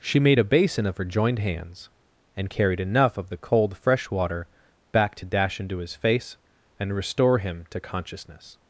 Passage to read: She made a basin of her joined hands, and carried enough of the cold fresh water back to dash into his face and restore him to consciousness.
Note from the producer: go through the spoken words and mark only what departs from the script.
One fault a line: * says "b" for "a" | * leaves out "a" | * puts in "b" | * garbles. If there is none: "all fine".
all fine